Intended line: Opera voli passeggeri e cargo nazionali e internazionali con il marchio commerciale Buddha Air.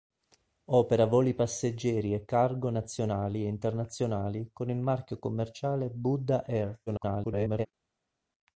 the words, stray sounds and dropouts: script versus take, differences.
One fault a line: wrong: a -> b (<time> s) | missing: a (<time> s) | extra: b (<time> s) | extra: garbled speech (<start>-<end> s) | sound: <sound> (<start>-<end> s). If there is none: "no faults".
extra: garbled speech (6.9-7.7 s)